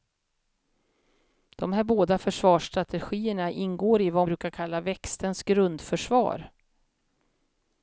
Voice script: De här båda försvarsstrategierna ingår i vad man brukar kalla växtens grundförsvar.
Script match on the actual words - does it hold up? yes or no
no